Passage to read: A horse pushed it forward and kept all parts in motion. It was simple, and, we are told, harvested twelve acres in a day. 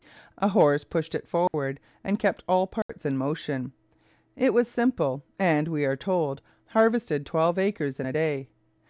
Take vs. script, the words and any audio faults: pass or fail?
fail